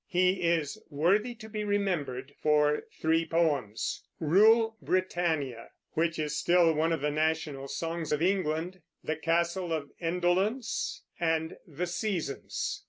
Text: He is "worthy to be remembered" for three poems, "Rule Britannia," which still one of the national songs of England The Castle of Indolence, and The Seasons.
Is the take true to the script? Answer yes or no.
no